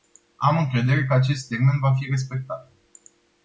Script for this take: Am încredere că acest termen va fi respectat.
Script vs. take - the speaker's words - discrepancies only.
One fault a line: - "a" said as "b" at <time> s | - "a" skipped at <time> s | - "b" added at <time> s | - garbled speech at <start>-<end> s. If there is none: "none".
none